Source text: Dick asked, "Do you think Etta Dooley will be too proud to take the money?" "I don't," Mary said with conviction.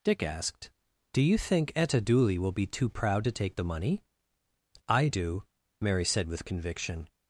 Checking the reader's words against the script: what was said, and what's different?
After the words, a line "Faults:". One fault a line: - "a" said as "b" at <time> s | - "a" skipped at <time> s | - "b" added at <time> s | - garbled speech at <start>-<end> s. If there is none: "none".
Dick asked, "Do you think Etta Dooley will be too proud to take the money?" "I do," Mary said with conviction.
Faults:
- "don't" said as "do" at 5.1 s